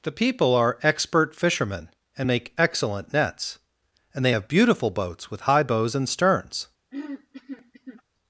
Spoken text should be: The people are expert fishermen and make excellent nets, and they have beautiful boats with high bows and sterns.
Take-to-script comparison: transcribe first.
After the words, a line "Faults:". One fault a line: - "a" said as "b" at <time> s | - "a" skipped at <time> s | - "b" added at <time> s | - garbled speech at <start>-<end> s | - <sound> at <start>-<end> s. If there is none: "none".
The people are expert fishermen and make excellent nets, and they have beautiful boats with high bows and sterns.
Faults:
- throat clearing at 6.9-8.0 s